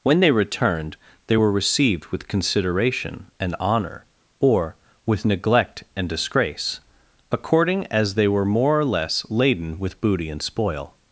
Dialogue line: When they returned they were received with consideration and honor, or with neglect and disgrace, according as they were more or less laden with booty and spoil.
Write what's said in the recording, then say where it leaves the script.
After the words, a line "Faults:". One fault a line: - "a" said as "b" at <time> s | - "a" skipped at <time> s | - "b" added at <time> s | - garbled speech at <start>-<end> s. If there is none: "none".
When they returned they were received with consideration and honor, or with neglect and disgrace, according as they were more or less laden with booty and spoil.
Faults:
none